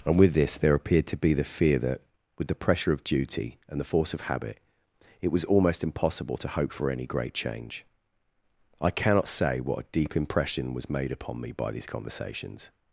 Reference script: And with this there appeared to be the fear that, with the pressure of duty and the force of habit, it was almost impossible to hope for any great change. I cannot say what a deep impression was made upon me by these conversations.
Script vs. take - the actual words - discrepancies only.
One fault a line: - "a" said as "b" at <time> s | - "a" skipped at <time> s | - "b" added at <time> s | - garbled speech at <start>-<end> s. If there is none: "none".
none